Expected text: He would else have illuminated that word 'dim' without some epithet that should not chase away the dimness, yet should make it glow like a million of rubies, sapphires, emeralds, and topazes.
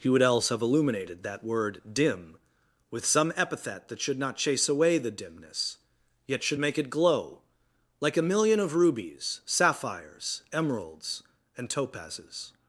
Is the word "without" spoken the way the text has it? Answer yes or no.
no